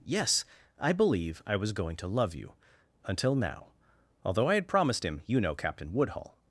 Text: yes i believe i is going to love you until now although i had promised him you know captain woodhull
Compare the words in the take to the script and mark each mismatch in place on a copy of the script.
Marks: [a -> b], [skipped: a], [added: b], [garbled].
yes i believe i [is -> was] going to love you until now although i had promised him you know captain woodhull